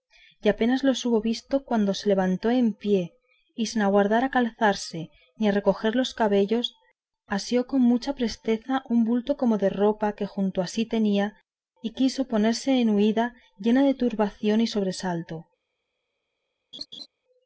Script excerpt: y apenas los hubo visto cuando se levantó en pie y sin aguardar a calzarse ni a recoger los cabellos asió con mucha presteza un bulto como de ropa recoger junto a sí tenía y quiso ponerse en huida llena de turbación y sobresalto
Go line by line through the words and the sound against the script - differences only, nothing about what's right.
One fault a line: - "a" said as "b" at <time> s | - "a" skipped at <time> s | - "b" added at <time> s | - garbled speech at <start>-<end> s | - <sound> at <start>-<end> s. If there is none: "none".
- "recoger" said as "que" at 10.1 s
- laugh at 16.7-17.1 s